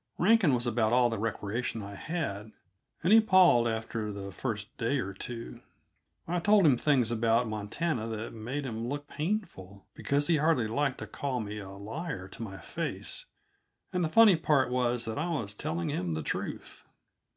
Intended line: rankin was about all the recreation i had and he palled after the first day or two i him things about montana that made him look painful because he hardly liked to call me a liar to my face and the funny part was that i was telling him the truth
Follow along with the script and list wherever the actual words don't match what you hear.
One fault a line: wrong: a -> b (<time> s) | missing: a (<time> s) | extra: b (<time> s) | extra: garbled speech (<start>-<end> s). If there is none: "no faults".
extra: told (6.4 s)